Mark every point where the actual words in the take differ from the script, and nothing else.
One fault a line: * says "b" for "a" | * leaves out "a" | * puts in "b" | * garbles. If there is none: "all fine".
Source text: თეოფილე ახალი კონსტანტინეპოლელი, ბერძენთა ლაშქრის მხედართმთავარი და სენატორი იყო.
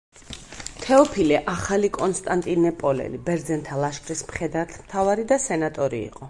all fine